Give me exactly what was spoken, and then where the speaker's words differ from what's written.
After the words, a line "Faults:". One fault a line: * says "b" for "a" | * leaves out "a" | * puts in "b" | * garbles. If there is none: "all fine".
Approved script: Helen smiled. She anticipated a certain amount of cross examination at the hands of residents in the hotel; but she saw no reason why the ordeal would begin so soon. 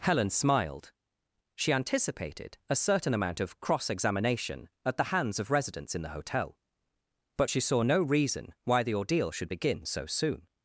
Helen smiled. She anticipated a certain amount of cross examination at the hands of residents in the hotel; but she saw no reason why the ordeal should begin so soon.
Faults:
* says "should" for "would"